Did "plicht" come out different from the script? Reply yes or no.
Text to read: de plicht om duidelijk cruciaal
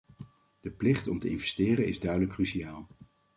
no